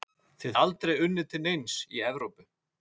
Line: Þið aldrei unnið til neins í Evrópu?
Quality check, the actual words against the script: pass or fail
pass